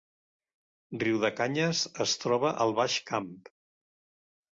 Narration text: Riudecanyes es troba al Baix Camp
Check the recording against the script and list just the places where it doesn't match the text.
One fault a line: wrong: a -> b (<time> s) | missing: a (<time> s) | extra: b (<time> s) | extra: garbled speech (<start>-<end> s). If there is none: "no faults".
no faults